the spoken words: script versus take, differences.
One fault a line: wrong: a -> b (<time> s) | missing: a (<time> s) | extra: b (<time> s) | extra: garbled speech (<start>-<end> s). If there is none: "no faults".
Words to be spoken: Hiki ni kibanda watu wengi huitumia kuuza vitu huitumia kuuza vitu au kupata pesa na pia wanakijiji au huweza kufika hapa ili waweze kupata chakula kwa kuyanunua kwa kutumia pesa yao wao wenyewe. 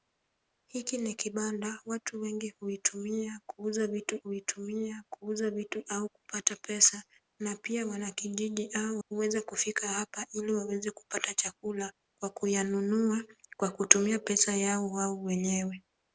no faults